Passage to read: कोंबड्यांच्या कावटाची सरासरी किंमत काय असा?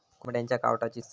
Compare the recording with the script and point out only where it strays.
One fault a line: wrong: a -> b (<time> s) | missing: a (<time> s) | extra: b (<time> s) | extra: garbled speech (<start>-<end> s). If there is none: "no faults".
missing: सरासरी किंमत काय (1.0 s)